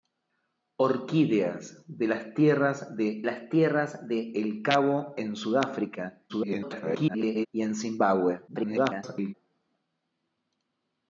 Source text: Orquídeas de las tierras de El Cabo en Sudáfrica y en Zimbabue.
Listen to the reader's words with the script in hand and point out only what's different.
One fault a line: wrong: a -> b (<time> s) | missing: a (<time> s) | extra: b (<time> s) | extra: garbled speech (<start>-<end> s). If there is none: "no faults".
extra: las tierras de (3.2 s)
extra: garbled speech (6.3-7.5 s)
extra: garbled speech (8.5-9.3 s)